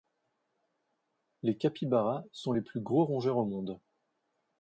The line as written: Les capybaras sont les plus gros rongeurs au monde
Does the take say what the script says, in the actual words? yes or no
yes